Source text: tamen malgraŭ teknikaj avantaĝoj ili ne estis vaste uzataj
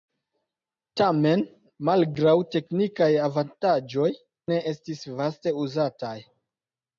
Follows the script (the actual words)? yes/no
no